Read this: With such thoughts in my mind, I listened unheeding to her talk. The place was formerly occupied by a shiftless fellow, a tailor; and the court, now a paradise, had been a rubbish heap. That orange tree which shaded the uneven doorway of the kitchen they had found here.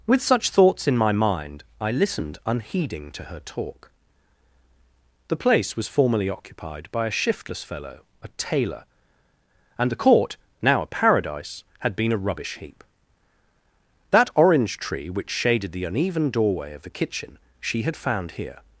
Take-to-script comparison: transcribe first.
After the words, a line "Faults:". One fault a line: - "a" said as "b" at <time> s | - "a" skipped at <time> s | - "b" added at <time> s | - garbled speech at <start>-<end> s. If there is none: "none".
With such thoughts in my mind, I listened unheeding to her talk. The place was formerly occupied by a shiftless fellow, a tailor; and the court, now a paradise, had been a rubbish heap. That orange tree which shaded the uneven doorway of the kitchen she had found here.
Faults:
- "they" said as "she" at 17.6 s